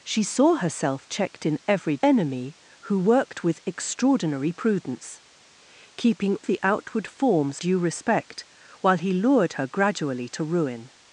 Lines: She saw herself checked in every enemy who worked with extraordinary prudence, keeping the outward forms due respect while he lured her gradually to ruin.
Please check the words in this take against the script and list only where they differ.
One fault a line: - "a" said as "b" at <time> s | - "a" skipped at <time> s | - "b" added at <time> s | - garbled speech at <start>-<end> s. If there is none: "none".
none